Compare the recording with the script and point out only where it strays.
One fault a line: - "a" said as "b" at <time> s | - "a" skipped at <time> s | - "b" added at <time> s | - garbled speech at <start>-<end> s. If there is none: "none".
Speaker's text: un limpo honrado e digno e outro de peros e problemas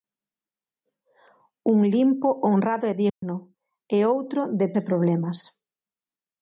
- "peros" skipped at 4.7 s